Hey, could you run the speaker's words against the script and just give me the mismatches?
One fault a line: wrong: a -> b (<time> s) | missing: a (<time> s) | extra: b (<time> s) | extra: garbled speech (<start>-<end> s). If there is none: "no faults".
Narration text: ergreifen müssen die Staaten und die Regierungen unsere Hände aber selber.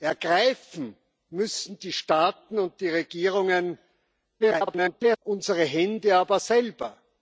extra: garbled speech (4.4-5.2 s)